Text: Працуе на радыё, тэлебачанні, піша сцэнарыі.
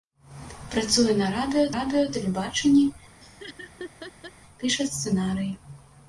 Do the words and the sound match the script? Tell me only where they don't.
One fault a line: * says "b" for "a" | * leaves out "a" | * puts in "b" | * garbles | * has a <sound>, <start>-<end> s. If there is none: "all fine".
* puts in "радыё"
* has a laugh, 3.2-4.3 s